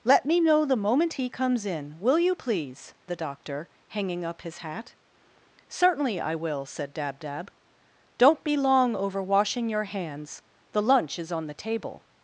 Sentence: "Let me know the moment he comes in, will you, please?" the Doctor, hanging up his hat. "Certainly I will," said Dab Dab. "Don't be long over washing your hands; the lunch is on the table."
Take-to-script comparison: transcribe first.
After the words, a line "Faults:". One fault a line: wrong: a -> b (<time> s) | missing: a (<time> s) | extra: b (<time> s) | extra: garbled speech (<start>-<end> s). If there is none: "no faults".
"Let me know the moment he comes in, will you, please?" the Doctor, hanging up his hat. "Certainly I will," said Dab Dab. "Don't be long over washing your hands; the lunch is on the table."
Faults:
no faults